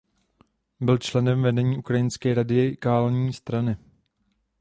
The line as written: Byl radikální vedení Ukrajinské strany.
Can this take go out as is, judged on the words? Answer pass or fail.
fail